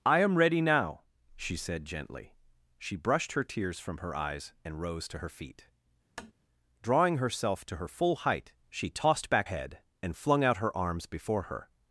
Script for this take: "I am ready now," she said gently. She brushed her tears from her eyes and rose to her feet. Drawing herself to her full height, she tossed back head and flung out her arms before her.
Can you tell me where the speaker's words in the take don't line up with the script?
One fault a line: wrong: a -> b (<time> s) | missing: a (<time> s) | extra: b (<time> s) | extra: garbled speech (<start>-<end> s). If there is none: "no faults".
no faults